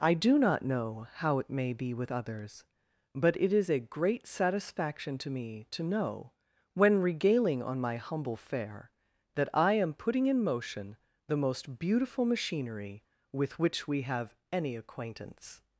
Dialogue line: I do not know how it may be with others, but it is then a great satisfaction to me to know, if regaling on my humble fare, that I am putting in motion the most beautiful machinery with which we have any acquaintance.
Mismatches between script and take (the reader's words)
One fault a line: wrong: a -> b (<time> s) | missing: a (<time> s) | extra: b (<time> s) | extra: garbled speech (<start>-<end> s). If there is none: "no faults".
missing: then (3.7 s)
wrong: if -> when (6.8 s)